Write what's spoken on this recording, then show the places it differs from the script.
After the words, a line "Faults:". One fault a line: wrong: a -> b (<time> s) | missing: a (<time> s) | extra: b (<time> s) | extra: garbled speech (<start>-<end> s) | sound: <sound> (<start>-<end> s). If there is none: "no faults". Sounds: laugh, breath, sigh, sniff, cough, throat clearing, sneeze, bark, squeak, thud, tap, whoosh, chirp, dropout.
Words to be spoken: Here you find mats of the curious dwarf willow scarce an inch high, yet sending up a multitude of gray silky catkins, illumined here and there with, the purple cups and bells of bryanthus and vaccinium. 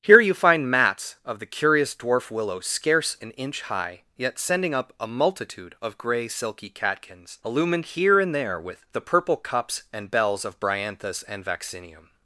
Here you find mats of the curious dwarf willow scarce an inch high, yet sending up a multitude of gray silky catkins, illumined here and there with, the purple cups and bells of bryanthus and vaccinium.
Faults:
no faults